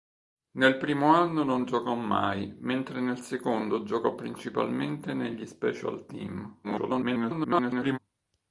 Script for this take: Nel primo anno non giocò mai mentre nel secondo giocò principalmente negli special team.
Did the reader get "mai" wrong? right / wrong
right